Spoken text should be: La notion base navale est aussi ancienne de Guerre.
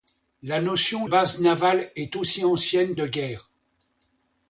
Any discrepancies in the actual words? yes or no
no